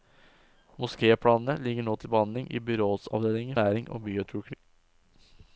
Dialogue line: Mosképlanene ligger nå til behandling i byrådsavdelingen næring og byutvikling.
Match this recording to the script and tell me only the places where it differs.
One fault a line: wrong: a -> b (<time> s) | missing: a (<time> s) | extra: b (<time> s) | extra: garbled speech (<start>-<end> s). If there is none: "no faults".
no faults